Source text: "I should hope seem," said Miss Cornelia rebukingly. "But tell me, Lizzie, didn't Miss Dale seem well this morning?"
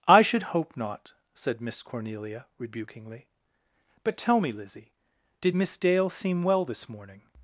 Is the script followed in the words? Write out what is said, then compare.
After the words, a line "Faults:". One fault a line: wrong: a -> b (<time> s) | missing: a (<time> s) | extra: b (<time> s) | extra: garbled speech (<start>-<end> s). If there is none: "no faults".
"I should hope not," said Miss Cornelia rebukingly. "But tell me, Lizzie, did Miss Dale seem well this morning?"
Faults:
wrong: seem -> not (0.8 s)
wrong: didn't -> did (5.4 s)